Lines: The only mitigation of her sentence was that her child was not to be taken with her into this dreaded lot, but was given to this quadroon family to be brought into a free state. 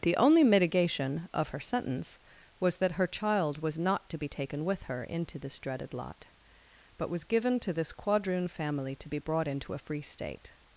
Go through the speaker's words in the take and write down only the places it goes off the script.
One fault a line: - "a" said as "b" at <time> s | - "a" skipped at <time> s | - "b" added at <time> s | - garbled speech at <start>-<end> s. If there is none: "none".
none